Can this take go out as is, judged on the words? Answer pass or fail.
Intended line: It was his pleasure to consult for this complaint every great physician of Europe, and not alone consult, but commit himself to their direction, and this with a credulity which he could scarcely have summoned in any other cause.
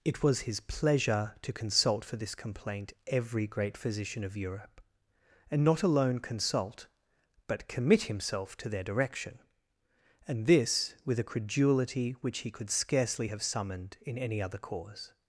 pass